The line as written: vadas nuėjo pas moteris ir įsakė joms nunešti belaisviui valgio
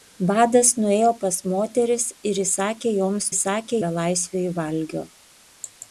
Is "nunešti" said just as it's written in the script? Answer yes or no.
no